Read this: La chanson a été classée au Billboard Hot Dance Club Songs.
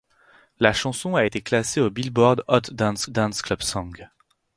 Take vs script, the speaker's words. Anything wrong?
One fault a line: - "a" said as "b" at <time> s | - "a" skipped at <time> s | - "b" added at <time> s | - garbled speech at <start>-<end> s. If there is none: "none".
- "Dance" added at 3.1 s